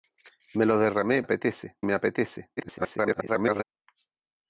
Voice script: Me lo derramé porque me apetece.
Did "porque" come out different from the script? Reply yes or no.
yes